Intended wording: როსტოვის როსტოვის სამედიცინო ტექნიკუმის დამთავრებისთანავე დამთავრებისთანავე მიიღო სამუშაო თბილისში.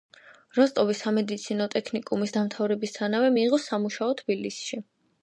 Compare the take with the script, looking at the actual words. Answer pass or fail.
fail